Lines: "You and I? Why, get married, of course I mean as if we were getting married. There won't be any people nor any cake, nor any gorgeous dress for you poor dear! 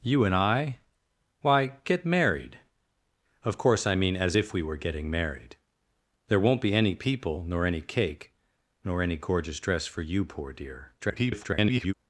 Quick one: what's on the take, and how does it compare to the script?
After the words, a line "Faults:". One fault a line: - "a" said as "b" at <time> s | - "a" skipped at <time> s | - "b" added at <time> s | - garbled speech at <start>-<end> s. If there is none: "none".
"You and I? Why, get married, of course I mean as if we were getting married. There won't be any people nor any cake, nor any gorgeous dress for you poor dear! [garbled]
Faults:
- garbled speech at 11.0-11.9 s